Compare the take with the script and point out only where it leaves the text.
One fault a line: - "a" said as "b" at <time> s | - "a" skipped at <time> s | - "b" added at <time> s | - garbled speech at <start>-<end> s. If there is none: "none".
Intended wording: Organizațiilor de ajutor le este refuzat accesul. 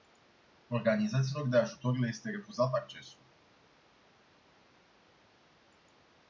none